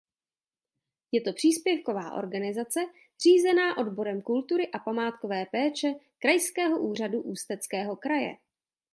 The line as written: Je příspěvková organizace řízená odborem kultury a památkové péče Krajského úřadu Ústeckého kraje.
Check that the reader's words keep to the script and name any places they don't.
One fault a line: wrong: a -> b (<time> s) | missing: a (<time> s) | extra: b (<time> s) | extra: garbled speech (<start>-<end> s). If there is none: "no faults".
extra: to (1.2 s)